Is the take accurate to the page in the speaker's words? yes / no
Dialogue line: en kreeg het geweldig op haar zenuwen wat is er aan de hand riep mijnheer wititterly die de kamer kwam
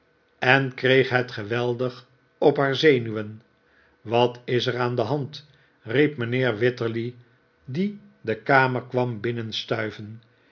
yes